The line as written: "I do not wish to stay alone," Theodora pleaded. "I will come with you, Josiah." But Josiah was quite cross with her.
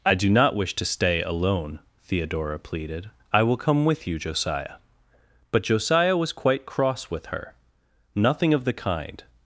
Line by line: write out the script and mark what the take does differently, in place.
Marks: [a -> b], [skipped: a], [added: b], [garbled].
"I do not wish to stay alone," Theodora pleaded. "I will come with you, Josiah." But Josiah was quite cross with her. [added: Nothing of the kind]